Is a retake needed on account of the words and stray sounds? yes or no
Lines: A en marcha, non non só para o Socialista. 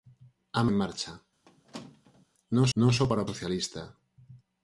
yes